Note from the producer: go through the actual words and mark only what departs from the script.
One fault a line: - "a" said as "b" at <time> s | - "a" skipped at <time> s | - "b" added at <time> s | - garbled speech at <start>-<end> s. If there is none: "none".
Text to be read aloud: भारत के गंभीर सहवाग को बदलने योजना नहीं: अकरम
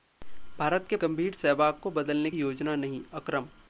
none